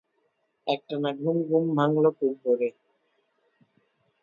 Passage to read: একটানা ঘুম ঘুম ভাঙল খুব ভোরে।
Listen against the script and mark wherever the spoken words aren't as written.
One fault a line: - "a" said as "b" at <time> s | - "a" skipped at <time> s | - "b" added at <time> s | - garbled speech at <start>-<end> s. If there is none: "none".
none